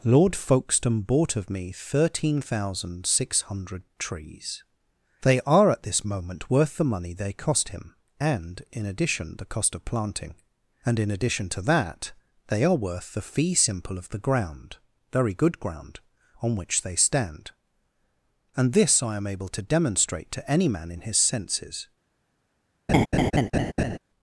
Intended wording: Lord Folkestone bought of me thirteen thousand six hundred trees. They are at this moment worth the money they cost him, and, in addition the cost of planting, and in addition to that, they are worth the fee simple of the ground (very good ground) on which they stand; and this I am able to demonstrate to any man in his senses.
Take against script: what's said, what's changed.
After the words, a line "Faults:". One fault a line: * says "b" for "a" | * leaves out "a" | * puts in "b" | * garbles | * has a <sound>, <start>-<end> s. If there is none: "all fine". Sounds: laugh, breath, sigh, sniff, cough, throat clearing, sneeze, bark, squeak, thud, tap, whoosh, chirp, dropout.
Lord Folkestone bought of me thirteen thousand six hundred trees. They are at this moment worth the money they cost him, and, in addition the cost of planting, and in addition to that, they are worth the fee simple of the ground (very good ground) on which they stand; and this I am able to demonstrate to any man in his senses.
Faults:
* has a laugh, 22.9-24.0 s